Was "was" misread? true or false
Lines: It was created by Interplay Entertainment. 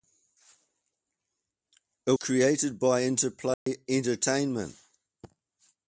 true